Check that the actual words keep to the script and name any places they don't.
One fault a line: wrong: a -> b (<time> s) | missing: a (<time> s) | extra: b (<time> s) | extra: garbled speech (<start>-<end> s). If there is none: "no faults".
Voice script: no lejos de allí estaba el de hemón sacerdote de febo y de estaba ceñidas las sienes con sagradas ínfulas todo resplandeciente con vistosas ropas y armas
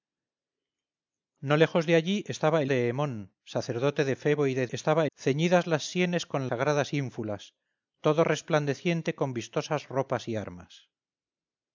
no faults